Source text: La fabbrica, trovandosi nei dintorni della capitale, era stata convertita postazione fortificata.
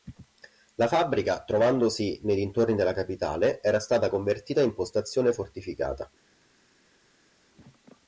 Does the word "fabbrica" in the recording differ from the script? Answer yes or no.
no